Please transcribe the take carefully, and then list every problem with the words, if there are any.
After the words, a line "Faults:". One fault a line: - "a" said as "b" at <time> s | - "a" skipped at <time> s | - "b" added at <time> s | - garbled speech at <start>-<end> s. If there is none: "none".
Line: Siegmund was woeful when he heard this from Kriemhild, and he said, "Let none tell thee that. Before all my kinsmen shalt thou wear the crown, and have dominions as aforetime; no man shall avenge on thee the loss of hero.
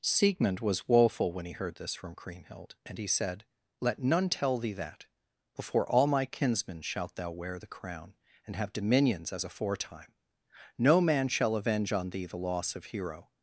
Siegmund was woeful when he heard this from Kriemhild, and he said, "Let none tell thee that. Before all my kinsmen shalt thou wear the crown, and have dominions as aforetime; no man shall avenge on thee the loss of hero.
Faults:
none